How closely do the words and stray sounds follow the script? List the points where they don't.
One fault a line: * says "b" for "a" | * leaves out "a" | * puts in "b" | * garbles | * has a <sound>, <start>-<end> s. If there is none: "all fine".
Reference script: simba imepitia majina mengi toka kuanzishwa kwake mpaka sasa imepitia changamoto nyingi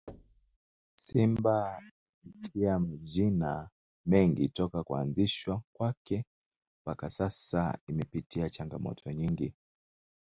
* has a thud, 0.1-0.6 s